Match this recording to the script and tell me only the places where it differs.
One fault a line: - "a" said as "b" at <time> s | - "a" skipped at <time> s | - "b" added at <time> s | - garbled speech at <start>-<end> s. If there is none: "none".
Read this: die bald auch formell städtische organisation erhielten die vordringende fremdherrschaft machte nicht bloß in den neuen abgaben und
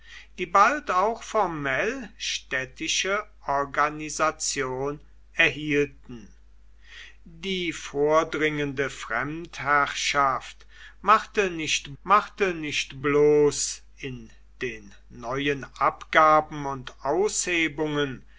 - "machte nicht" added at 12.0 s